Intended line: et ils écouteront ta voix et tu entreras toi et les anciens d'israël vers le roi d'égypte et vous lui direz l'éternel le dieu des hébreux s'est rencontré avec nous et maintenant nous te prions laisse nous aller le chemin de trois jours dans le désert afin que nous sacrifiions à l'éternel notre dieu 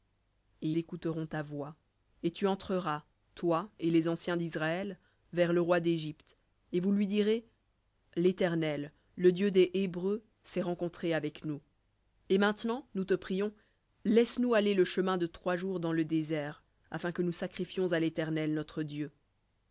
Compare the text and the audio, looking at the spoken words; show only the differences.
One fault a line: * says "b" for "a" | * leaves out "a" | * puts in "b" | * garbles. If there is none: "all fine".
* leaves out "ils"